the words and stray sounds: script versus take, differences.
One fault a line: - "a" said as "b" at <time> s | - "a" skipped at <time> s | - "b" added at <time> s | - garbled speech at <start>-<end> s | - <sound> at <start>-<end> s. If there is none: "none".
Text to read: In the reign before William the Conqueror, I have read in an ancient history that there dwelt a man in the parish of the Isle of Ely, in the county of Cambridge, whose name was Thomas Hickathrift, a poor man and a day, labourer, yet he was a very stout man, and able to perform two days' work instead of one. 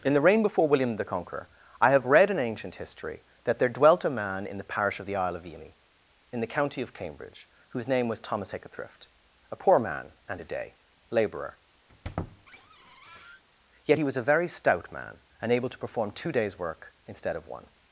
- "an" skipped at 2.4 s
- squeak at 11.9-13.4 s